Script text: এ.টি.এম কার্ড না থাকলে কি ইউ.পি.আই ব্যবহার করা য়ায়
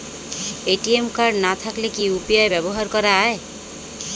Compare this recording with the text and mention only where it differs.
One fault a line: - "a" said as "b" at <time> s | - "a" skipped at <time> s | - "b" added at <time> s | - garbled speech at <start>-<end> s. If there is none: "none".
none